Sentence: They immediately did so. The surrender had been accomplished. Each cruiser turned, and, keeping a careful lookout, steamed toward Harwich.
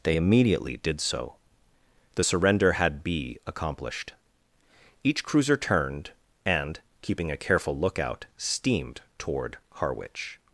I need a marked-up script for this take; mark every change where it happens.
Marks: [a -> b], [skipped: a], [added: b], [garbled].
They immediately did so. The surrender had [been -> be] accomplished. Each cruiser turned, and, keeping a careful lookout, steamed toward Harwich.